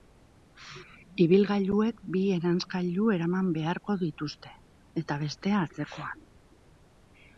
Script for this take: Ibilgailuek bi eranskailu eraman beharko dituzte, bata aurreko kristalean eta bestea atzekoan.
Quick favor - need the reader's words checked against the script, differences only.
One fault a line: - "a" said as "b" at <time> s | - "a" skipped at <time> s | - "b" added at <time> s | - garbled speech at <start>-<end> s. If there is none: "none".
- "bata aurreko kristalean" skipped at 4.5 s